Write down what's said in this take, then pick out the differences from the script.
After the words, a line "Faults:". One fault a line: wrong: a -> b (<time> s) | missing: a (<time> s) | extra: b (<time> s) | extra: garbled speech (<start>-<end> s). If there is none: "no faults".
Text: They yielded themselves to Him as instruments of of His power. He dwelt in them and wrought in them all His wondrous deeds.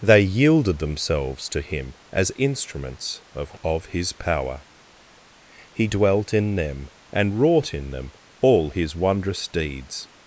They yielded themselves to Him as instruments of of His power. He dwelt in them and wrought in them all His wondrous deeds.
Faults:
no faults